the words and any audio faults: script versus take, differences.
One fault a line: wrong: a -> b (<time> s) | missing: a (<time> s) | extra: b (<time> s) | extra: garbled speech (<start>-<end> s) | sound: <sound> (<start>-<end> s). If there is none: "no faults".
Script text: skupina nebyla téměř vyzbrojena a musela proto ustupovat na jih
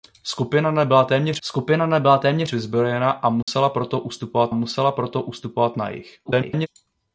extra: skupina nebyla téměř (1.4 s)
sound: dropout (3.4-3.5 s)
extra: musela proto ustupovat (4.5 s)
extra: garbled speech (6.3-6.7 s)